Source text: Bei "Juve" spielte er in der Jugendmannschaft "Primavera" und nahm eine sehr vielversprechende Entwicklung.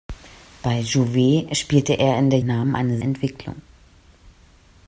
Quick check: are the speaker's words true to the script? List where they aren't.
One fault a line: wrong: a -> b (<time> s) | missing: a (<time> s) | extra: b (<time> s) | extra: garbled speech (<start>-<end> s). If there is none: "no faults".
missing: Jugendmannschaft Primavera und (2.4 s)
missing: sehr vielversprechende (3.0 s)